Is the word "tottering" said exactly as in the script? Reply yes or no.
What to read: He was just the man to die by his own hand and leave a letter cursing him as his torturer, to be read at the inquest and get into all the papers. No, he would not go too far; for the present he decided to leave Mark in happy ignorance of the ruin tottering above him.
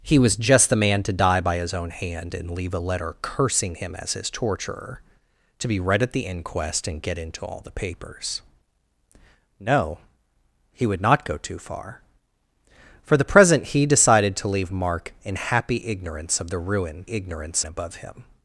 no